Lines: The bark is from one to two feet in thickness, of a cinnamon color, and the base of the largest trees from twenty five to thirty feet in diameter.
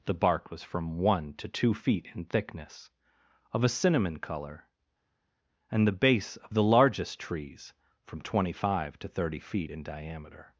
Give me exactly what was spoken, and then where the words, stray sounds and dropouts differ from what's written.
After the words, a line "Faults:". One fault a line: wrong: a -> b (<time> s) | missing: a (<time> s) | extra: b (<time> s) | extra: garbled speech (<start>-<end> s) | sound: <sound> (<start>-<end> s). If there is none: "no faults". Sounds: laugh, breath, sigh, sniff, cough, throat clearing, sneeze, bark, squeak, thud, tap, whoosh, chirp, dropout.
The bark was from one to two feet in thickness, of a cinnamon color, and the base of the largest trees from twenty five to thirty feet in diameter.
Faults:
wrong: is -> was (0.5 s)